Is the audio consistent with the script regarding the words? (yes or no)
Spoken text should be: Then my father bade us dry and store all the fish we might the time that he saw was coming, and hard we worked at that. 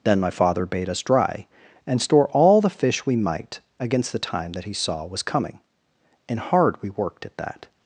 no